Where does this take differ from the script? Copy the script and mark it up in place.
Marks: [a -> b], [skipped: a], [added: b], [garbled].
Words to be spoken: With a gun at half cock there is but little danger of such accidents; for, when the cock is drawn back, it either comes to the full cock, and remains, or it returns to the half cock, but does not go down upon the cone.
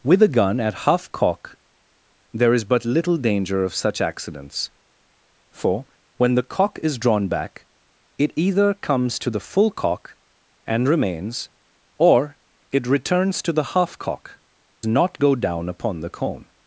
With a gun at half cock there is but little danger of such accidents; for, when the cock is drawn back, it either comes to the full cock, and remains, or it returns to the half cock, [skipped: but does] not go down upon the cone.